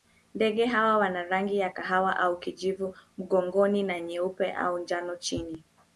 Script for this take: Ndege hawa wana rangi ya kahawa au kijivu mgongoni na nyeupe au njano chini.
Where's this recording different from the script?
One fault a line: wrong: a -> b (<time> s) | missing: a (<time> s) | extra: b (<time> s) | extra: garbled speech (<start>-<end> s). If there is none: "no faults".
no faults